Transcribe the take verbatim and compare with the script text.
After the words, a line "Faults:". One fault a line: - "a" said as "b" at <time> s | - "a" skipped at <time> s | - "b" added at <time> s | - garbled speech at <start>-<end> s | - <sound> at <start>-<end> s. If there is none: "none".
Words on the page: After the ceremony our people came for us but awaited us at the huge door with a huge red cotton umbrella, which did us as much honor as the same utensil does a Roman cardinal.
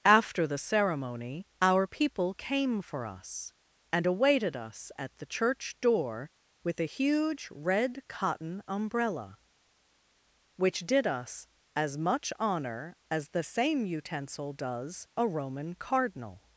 After the ceremony our people came for us and awaited us at the church door with a huge red cotton umbrella, which did us as much honor as the same utensil does a Roman cardinal.
Faults:
- "but" said as "and" at 3.9 s
- "huge" said as "church" at 5.3 s